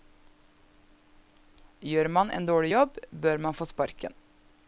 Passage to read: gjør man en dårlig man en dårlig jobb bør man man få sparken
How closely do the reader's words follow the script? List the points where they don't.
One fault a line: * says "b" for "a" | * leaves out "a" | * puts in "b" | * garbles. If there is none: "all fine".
* leaves out "man en dårlig"
* leaves out "man"